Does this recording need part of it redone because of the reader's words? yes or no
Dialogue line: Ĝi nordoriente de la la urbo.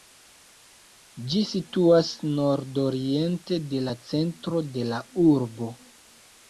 yes